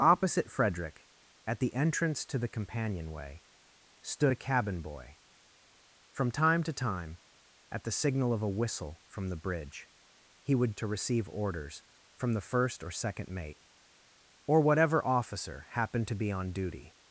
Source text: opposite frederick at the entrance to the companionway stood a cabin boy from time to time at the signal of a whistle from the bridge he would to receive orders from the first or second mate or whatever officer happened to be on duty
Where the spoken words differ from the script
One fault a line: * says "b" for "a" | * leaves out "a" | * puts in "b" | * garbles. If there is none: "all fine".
all fine